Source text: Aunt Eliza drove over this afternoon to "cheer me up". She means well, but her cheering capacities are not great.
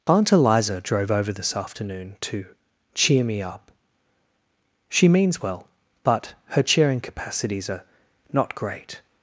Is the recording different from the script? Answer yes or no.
no